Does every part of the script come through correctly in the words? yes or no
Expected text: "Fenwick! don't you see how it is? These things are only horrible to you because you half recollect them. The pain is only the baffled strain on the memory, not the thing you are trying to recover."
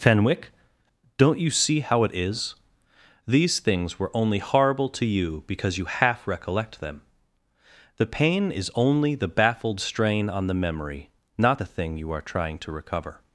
no